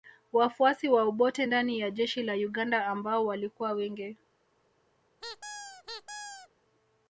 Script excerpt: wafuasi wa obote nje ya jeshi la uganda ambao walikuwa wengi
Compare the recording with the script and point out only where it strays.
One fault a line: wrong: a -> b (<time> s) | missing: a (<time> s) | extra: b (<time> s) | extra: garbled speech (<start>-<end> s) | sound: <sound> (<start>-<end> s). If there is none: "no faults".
wrong: nje -> ndani (1.4 s)
sound: squeak (5.2-6.5 s)